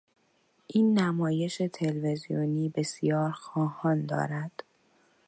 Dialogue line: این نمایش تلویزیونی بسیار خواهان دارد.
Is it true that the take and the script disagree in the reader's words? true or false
false